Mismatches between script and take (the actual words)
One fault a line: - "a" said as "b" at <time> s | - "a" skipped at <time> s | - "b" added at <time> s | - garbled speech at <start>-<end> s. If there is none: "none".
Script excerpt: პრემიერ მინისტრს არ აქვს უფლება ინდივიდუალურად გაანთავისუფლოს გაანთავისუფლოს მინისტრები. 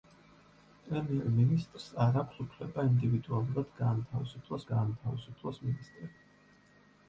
none